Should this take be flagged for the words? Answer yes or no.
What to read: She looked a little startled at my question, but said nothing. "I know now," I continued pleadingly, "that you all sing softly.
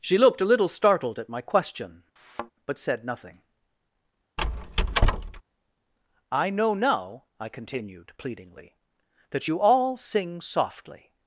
no